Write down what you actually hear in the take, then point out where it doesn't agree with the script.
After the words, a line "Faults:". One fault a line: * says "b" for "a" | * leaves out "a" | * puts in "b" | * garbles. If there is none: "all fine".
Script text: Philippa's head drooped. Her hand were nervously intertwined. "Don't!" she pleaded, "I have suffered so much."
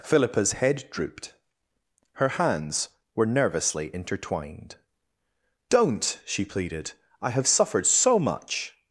Philippa's head drooped. Her hands were nervously intertwined. "Don't!" she pleaded, "I have suffered so much."
Faults:
* says "hands" for "hand"